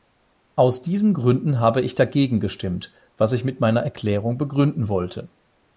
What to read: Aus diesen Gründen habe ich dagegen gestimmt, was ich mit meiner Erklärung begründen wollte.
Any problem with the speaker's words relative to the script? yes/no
no